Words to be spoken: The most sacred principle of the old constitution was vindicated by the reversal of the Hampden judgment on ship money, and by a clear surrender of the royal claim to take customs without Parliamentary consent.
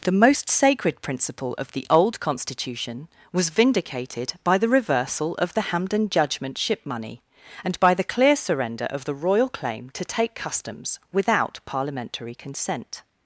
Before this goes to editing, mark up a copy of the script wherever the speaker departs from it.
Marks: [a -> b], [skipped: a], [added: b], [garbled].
The most sacred principle of the old constitution was vindicated by the reversal of the Hampden judgment [skipped: on] ship money, and by [a -> the] clear surrender of the royal claim to take customs without Parliamentary consent.